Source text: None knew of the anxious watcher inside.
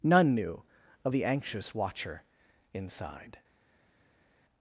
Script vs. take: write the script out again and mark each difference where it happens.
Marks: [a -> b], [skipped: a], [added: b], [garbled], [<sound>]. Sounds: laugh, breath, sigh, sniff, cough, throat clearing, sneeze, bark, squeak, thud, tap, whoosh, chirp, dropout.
None knew of the anxious watcher inside.